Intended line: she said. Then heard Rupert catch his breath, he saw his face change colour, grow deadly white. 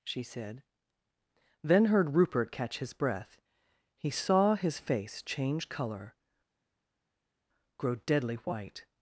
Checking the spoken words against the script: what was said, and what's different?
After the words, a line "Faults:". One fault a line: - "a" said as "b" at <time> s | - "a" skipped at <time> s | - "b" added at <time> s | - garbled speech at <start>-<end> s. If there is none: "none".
she said. Then heard Rupert catch his breath, he saw his face change colour, grow deadly white.
Faults:
none